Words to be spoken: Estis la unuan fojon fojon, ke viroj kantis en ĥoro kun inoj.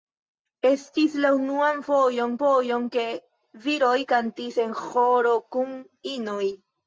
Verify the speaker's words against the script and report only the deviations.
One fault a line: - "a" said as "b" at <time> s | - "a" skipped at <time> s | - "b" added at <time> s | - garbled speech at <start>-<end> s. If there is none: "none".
none